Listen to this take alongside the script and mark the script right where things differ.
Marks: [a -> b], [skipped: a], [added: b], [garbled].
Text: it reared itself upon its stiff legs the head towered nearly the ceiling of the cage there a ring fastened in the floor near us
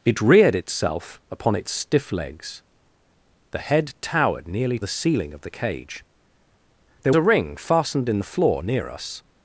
it reared itself upon its stiff legs the head towered nearly the ceiling of the cage there a ring fastened in the floor near us